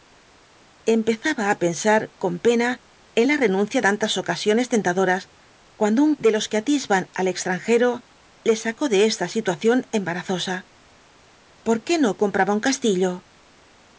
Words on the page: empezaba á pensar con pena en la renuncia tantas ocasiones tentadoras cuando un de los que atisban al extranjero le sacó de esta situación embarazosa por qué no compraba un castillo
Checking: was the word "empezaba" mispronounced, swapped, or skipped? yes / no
no